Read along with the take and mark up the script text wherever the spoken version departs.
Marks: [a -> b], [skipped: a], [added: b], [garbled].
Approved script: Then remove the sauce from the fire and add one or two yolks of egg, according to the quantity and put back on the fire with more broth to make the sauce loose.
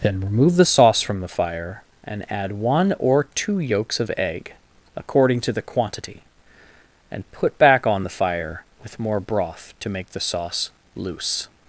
Then remove the sauce from the fire and add one or two yolks of egg, according to the quantity and put back on the fire with more broth to make the sauce loose.